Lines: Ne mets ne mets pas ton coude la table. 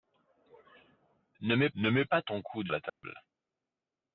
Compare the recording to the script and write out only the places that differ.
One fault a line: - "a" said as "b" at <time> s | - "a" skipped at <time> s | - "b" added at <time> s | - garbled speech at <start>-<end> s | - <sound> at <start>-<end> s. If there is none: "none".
- dropout at 2.9-3.0 s